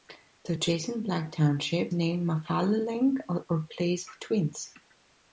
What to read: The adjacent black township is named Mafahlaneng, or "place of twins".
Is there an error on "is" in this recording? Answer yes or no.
yes